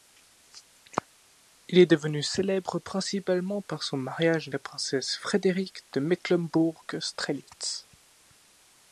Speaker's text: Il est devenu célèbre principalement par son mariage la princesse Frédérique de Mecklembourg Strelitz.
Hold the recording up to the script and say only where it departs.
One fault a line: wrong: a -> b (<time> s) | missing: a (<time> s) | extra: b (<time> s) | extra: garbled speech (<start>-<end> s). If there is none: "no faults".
no faults